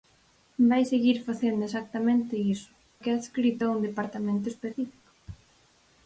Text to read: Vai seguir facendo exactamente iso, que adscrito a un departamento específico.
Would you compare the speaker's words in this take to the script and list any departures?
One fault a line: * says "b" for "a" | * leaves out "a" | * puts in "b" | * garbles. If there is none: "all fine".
all fine